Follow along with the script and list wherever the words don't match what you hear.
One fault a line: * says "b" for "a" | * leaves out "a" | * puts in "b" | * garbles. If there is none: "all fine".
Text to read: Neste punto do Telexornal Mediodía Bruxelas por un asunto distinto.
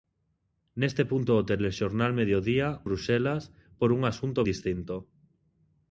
all fine